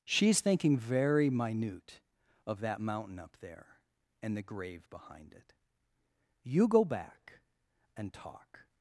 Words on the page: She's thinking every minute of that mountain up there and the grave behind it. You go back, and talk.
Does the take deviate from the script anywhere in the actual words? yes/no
yes